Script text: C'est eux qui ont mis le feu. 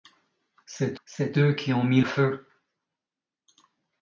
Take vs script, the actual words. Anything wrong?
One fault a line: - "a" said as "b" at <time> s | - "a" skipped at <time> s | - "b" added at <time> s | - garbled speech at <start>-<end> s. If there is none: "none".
- "c'est" added at 1.0 s
- "le" skipped at 2.0 s